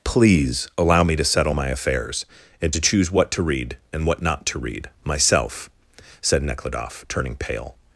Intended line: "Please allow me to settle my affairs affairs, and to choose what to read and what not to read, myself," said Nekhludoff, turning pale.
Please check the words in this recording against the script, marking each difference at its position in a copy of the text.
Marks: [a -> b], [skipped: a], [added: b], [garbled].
"Please allow me to settle my affairs [skipped: affairs,] and to choose what to read and what not to read, myself," said Nekhludoff, turning pale.